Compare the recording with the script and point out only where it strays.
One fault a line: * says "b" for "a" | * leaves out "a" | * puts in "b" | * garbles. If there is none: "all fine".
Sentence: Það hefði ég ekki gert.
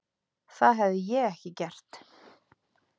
all fine